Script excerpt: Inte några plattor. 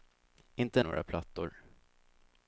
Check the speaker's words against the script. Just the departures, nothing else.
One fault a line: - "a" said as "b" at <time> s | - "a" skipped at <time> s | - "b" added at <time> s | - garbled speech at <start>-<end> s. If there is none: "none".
none